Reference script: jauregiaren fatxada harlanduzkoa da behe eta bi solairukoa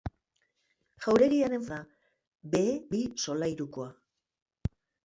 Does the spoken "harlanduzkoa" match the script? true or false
false